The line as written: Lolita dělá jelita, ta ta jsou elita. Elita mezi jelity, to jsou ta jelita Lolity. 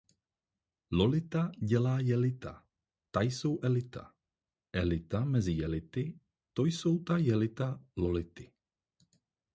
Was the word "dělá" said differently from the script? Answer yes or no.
no